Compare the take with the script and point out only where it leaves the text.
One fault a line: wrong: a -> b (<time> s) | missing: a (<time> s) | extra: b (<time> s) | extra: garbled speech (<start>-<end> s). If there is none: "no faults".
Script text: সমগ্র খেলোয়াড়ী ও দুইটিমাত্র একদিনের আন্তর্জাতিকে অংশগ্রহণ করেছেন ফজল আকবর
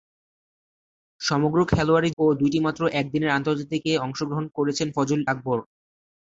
no faults